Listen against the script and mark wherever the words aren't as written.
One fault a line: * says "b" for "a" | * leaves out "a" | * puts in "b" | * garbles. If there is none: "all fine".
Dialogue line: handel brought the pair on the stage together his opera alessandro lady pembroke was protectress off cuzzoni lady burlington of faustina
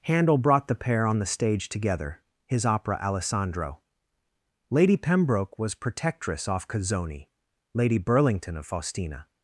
all fine